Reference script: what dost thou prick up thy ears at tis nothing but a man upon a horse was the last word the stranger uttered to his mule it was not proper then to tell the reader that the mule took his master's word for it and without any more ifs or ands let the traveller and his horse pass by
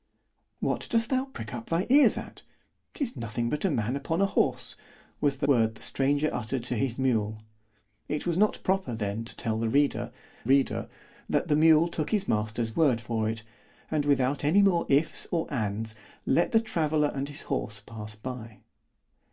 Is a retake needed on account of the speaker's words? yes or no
yes